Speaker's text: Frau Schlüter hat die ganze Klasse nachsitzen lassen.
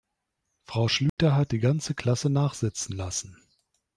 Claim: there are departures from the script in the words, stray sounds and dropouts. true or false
true